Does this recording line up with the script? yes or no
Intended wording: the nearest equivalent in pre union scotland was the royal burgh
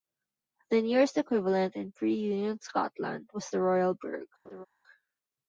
yes